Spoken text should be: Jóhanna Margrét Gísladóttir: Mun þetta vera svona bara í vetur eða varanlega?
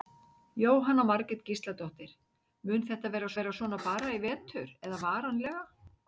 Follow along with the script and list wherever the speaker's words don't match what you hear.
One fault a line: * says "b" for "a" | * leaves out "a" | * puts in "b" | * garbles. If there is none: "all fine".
* puts in "vera"